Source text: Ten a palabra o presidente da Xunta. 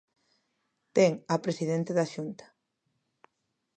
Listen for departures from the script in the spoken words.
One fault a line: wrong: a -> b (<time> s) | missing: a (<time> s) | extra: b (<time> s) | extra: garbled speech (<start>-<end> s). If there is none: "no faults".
missing: palabra (1.4 s)